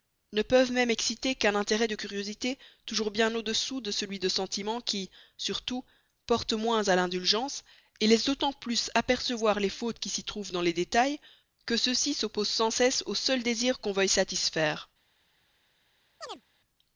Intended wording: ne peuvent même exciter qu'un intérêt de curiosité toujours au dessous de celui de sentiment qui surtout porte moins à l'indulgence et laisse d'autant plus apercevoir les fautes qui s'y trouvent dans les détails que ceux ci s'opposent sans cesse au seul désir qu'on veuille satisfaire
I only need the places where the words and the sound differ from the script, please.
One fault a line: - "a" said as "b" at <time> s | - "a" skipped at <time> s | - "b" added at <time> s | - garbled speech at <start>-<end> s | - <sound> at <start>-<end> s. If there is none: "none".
- "bien" added at 3.1 s
- chirp at 16.2-16.4 s